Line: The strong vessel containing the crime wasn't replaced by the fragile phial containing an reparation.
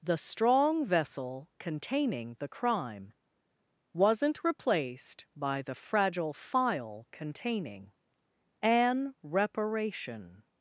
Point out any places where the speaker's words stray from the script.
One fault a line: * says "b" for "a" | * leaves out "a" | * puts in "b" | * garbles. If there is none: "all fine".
all fine